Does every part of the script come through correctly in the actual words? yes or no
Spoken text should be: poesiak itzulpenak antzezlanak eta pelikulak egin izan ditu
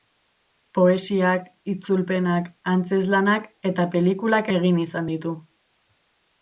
yes